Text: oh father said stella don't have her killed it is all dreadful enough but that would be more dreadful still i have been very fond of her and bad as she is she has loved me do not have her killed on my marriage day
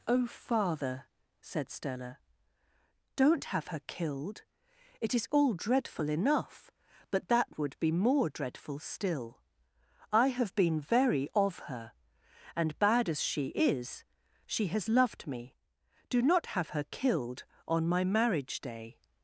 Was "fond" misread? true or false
true